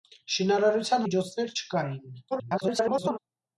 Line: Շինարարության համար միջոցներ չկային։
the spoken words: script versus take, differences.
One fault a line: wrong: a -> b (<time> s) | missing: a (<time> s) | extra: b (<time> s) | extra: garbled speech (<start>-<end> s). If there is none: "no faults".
missing: համար (1.1 s)
extra: garbled speech (2.3-3.2 s)